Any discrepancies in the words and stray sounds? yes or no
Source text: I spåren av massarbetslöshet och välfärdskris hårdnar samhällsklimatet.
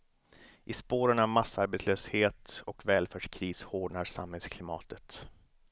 no